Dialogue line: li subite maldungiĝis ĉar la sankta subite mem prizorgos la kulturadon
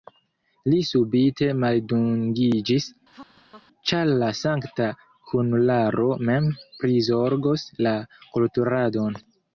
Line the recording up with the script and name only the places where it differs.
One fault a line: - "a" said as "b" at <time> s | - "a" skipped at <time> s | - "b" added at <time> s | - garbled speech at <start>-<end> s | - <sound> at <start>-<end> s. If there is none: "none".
- laugh at 3.1-3.7 s
- "subite" said as "kunularo" at 5.3 s